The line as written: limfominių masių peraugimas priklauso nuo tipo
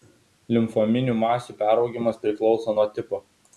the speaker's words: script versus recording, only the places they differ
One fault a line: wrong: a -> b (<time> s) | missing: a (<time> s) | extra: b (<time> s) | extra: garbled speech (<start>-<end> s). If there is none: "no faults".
no faults